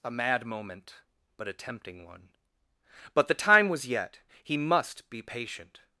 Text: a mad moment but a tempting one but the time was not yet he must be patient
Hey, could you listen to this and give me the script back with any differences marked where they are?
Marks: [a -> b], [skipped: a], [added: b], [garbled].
a mad moment but a tempting one but the time was [skipped: not] yet he must be patient